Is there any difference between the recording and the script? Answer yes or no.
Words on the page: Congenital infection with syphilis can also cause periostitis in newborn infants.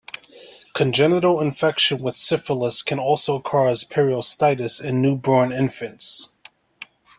no